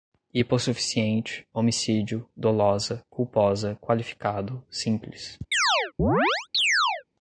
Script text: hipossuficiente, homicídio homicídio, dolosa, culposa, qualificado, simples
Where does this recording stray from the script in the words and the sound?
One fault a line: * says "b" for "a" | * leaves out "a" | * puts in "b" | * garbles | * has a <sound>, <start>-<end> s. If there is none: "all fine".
* leaves out "homicídio"
* has a chirp, 5.5-7.0 s